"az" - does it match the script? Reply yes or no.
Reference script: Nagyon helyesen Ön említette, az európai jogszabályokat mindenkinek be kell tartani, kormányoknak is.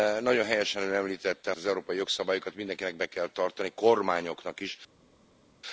yes